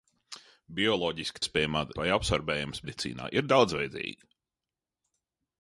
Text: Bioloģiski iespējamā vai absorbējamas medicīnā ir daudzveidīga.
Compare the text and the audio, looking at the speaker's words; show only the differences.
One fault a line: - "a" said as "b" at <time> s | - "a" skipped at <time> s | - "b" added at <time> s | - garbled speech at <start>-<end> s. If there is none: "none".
none